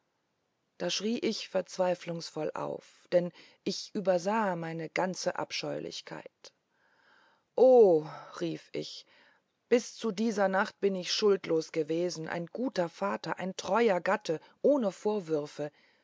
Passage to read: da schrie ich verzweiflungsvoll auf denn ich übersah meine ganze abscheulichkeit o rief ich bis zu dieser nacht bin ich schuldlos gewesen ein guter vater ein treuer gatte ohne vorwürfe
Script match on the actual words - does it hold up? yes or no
yes